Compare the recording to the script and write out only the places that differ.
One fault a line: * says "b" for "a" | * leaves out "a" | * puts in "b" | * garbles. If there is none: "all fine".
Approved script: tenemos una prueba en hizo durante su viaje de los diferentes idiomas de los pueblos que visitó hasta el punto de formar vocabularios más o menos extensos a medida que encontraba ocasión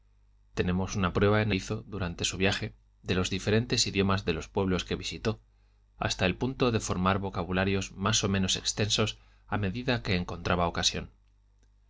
all fine